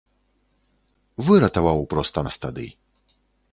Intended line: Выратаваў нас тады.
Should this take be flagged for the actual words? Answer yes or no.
yes